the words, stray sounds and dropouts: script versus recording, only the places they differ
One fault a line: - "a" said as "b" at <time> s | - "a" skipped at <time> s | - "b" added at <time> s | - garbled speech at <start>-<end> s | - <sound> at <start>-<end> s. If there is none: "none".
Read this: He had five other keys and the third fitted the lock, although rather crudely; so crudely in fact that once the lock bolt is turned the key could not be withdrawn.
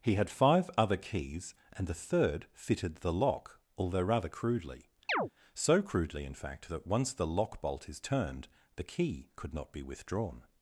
- chirp at 5.1-5.3 s